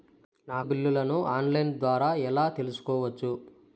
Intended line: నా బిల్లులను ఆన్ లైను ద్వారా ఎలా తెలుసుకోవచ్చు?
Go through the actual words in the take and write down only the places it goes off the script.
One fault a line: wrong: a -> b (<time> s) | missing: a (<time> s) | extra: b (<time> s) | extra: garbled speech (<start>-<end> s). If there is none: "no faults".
no faults